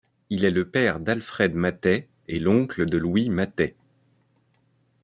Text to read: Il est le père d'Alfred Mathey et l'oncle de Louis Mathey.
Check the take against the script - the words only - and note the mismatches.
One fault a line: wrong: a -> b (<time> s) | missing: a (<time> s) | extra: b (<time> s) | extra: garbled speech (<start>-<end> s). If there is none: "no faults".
no faults